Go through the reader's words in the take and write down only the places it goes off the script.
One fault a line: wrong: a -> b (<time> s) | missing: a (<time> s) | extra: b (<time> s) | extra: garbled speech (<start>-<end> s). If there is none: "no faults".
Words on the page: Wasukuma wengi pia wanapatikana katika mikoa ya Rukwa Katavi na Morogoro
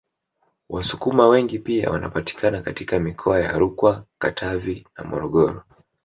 no faults